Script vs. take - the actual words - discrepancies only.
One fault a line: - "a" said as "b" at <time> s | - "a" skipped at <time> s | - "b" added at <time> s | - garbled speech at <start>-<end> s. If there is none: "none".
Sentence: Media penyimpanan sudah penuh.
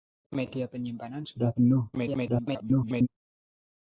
- garbled speech at 1.9-3.1 s